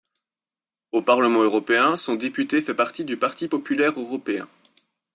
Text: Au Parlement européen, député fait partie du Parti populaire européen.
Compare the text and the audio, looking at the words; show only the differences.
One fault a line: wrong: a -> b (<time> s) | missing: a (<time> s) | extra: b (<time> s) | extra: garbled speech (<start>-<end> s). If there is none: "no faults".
extra: son (1.9 s)